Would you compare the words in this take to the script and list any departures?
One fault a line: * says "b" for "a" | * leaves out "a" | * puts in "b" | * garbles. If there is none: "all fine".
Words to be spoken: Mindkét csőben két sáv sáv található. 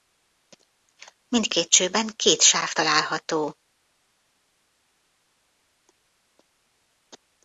* leaves out "sáv"